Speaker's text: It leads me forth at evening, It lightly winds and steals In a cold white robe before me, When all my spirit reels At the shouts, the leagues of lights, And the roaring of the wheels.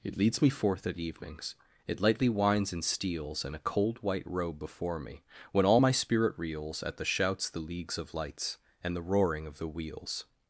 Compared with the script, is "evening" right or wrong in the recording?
wrong